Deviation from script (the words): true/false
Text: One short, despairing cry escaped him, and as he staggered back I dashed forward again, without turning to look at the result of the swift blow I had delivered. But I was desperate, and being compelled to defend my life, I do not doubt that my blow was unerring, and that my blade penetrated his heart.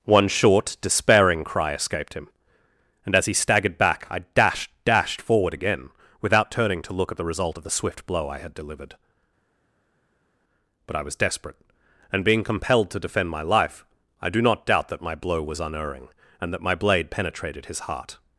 true